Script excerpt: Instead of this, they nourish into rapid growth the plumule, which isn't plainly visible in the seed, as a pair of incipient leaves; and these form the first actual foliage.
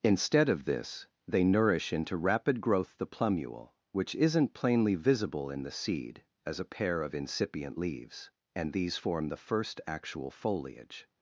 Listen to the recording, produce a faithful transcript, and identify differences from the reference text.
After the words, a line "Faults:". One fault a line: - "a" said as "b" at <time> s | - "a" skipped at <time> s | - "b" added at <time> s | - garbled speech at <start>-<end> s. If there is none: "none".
Instead of this, they nourish into rapid growth the plumule, which isn't plainly visible in the seed, as a pair of incipient leaves; and these form the first actual foliage.
Faults:
none